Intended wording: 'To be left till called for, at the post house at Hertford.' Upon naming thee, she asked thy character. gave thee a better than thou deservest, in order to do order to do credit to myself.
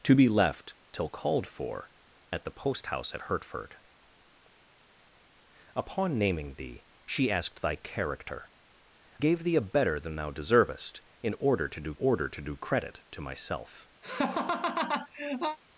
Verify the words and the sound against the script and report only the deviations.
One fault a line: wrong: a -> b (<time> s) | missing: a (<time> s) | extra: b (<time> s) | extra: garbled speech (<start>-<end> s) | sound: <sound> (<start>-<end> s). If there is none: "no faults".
sound: laugh (14.0-15.6 s)